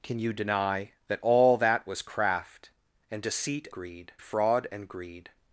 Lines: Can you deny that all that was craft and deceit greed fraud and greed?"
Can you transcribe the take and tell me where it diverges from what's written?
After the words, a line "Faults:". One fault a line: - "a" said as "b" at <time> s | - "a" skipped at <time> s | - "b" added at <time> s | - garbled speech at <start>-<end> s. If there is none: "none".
Can you deny that all that was craft and deceit greed fraud and greed?"
Faults:
none